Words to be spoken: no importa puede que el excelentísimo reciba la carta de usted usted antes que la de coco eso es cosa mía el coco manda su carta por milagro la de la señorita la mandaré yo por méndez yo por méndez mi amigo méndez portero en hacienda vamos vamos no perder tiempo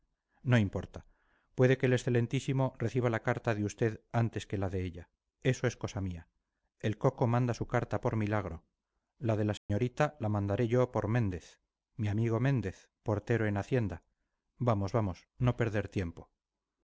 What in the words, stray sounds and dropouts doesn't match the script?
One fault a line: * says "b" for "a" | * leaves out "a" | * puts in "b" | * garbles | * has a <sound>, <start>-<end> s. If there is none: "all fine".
* leaves out "usted"
* says "ella" for "coco"
* has a dropout, 9.6-9.7 s
* leaves out "yo por méndez"